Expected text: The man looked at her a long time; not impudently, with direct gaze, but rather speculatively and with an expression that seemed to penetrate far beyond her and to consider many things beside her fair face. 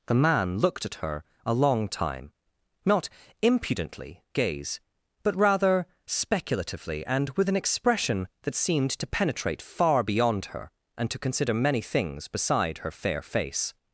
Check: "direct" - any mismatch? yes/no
yes